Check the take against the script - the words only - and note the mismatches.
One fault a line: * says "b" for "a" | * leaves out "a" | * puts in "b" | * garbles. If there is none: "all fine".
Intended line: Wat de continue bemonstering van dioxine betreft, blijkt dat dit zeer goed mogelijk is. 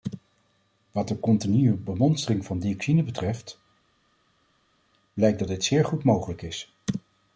all fine